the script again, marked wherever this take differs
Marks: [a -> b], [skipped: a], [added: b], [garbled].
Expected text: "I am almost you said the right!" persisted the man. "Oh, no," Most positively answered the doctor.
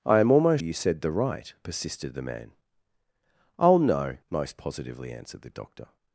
"I am almost you said the right!" persisted the man. "Oh, no," Most positively answered the doctor.